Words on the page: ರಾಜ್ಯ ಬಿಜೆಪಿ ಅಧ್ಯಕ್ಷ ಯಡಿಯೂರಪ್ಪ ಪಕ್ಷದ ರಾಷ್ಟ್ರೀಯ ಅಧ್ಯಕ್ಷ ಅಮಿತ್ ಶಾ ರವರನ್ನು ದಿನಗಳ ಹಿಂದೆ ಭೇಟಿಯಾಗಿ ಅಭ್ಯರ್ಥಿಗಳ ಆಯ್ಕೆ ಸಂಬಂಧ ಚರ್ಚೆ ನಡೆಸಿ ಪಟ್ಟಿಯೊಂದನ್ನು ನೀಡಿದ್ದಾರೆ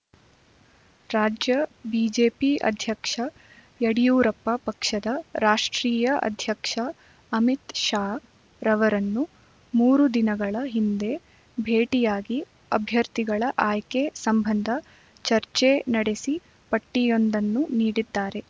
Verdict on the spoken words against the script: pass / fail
fail